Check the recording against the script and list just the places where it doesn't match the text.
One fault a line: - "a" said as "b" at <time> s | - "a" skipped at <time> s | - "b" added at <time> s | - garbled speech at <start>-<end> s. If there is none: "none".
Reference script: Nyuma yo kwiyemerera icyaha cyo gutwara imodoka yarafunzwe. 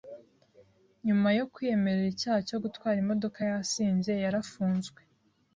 - "yasinze" added at 3.5 s